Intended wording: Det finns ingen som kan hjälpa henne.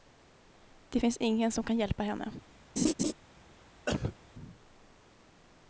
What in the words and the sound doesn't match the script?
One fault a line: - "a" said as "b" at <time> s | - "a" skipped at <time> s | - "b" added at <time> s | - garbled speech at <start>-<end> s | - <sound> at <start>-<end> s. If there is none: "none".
- laugh at 2.8-3.1 s
- cough at 3.9-4.2 s